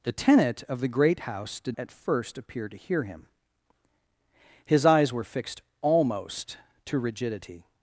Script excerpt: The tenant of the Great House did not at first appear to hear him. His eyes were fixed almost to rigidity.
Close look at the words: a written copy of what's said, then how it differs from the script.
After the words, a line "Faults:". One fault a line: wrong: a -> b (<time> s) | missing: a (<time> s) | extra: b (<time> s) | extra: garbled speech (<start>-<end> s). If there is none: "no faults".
The tenant of the Great House did at first appear to hear him. His eyes were fixed almost to rigidity.
Faults:
missing: not (1.8 s)